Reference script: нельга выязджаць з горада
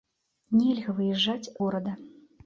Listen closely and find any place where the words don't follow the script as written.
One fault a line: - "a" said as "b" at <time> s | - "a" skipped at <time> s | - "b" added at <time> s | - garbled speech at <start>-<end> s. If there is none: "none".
- "з" skipped at 1.5 s